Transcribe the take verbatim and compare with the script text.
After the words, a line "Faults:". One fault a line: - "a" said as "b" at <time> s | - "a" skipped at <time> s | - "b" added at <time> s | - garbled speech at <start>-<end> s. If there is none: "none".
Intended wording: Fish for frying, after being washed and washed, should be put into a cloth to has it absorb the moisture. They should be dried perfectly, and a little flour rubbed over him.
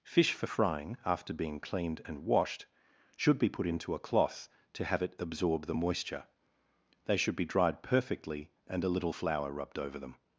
Fish for frying, after being cleaned and washed, should be put into a cloth to have it absorb the moisture. They should be dried perfectly, and a little flour rubbed over them.
Faults:
- "washed" said as "cleaned" at 1.6 s
- "has" said as "have" at 4.8 s
- "him" said as "them" at 10.0 s